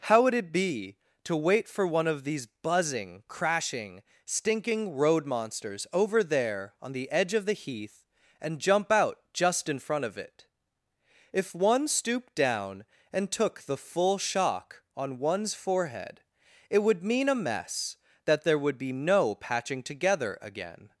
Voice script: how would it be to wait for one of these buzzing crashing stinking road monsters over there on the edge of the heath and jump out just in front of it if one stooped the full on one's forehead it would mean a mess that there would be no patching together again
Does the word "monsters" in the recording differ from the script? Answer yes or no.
no